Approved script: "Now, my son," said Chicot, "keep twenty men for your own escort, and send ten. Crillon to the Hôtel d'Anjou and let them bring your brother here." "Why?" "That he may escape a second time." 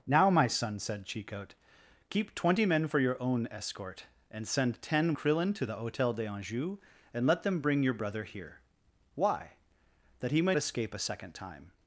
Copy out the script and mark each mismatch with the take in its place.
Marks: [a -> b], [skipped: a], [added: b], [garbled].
"Now, my son," said Chicot, "keep twenty men for your own escort, and send ten. Crillon to the Hôtel d'Anjou and let them bring your brother here." "Why?" "That he may escape a second time."